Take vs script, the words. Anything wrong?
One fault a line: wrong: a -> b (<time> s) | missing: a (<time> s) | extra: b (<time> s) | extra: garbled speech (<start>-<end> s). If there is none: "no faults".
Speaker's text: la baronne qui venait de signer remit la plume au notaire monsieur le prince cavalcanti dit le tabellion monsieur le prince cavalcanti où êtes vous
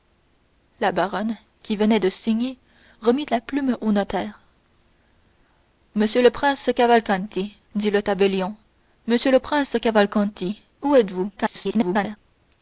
extra: garbled speech (11.4-12.2 s)